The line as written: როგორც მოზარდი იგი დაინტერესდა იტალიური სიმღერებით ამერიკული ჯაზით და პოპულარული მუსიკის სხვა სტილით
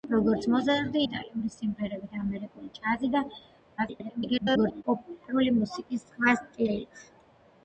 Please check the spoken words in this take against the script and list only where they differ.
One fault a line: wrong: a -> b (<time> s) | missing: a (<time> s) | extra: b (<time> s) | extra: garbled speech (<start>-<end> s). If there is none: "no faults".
missing: იგი დაინტერესდა (1.0 s)
extra: garbled speech (3.8-4.8 s)